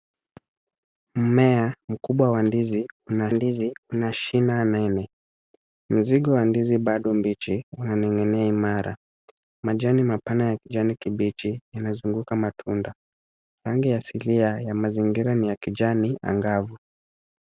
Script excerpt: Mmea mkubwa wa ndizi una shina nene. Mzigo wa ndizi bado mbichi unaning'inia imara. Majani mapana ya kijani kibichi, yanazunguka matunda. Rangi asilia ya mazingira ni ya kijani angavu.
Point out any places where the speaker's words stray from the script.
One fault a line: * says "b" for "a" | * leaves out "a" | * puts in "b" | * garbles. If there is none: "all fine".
* puts in "ndizi una"